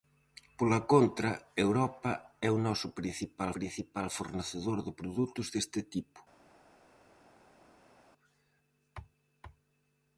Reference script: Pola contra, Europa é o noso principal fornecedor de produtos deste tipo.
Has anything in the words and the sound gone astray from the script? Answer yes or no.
yes